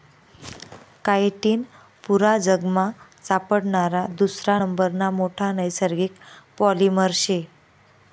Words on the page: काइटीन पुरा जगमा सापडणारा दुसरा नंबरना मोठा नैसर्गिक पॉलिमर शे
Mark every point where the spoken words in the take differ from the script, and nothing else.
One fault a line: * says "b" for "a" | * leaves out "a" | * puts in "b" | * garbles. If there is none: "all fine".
all fine